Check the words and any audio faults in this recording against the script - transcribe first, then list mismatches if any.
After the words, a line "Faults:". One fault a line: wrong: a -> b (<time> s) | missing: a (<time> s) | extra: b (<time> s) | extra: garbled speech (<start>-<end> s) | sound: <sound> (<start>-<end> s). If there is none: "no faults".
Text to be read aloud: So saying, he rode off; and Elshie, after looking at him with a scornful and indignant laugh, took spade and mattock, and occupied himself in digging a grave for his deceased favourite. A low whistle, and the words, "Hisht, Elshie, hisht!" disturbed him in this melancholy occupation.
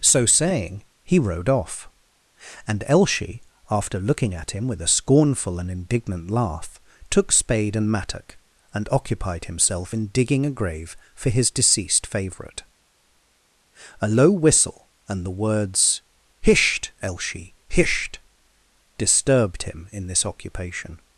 So saying, he rode off; and Elshie, after looking at him with a scornful and indignant laugh, took spade and mattock, and occupied himself in digging a grave for his deceased favourite. A low whistle, and the words, "Hisht, Elshie, hisht!" disturbed him in this occupation.
Faults:
missing: melancholy (20.2 s)